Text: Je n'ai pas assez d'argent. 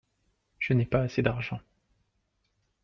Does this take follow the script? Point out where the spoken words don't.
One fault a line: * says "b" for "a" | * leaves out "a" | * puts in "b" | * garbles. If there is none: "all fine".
all fine